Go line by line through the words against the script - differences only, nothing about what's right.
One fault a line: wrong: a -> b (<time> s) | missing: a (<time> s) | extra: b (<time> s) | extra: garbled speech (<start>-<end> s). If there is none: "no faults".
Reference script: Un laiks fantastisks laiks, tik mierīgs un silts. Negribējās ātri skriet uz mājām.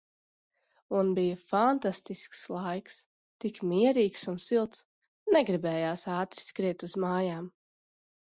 wrong: laiks -> bija (1.1 s)